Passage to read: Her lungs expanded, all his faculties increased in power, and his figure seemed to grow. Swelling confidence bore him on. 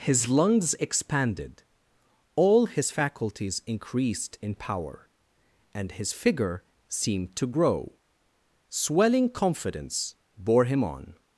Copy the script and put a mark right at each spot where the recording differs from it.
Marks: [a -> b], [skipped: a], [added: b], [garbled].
[Her -> His] lungs expanded, all his faculties increased in power, and his figure seemed to grow. Swelling confidence bore him on.